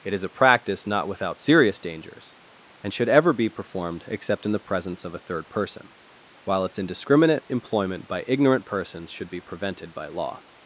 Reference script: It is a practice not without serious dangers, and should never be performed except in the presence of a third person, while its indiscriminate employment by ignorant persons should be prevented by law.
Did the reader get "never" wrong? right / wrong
wrong